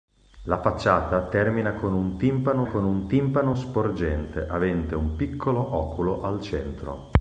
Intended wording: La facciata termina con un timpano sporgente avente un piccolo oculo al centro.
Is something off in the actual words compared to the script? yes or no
yes